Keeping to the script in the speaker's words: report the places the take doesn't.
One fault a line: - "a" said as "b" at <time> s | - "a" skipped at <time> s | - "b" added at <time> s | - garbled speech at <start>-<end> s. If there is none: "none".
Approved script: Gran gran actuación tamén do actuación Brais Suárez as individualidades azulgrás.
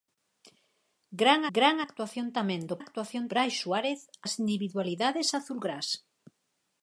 none